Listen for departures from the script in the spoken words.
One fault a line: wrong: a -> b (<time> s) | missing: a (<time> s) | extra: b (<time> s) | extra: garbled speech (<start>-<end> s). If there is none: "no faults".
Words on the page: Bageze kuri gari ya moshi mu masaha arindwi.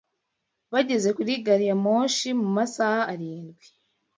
no faults